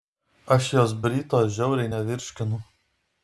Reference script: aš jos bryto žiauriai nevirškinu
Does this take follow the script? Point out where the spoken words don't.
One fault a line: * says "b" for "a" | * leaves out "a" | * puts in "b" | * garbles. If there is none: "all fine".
all fine